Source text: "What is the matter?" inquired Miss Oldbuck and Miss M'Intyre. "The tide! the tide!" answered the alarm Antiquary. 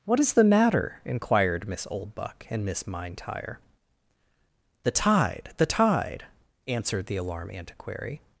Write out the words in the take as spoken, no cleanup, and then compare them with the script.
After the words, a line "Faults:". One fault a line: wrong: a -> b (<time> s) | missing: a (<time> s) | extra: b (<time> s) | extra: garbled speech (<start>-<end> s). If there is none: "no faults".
"What is the matter?" inquired Miss Oldbuck and Miss M'Intyre. "The tide! the tide!" answered the alarm Antiquary.
Faults:
no faults